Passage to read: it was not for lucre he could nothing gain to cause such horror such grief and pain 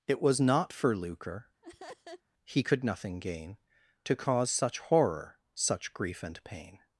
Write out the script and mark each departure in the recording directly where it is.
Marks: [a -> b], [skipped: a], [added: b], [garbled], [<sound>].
it was not for lucre [laugh] he could nothing gain to cause such horror such grief and pain